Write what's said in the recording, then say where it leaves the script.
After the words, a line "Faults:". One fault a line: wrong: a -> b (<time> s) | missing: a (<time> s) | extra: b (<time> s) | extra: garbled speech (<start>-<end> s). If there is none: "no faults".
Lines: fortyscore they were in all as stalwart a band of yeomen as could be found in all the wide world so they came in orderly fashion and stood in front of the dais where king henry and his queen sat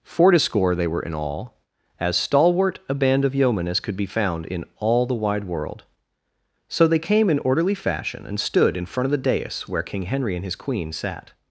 fortyscore they were in all as stalwart a band of yeomen as could be found in all the wide world so they came in orderly fashion and stood in front of the dais where king henry and his queen sat
Faults:
no faults